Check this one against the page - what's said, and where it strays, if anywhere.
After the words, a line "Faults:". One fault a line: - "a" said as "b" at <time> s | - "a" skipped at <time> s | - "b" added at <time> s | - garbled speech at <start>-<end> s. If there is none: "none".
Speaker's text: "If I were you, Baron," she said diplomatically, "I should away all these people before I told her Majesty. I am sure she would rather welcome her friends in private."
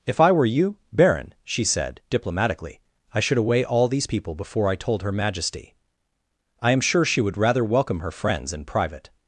"If I were you, Baron," she said diplomatically, "I should away all these people before I told her Majesty. I am sure she would rather welcome her friends in private."
Faults:
none